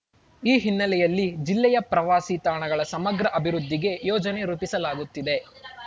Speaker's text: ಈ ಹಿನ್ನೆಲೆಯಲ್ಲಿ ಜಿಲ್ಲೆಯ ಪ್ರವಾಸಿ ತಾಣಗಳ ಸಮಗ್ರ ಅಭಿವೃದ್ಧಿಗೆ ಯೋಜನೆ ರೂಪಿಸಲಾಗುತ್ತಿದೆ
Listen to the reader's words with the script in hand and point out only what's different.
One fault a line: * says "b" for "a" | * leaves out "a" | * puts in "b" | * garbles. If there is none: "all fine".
all fine